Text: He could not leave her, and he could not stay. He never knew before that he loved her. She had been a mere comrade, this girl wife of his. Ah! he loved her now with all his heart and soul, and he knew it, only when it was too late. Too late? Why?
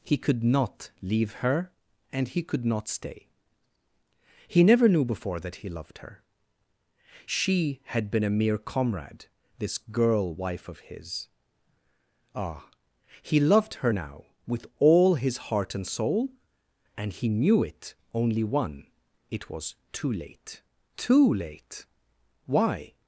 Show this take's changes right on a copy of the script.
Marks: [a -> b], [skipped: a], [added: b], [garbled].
He could not leave her, and he could not stay. He never knew before that he loved her. She had been a mere comrade, this girl wife of his. Ah! he loved her now with all his heart and soul, and he knew it, only [when -> one] it was too late. Too late? Why?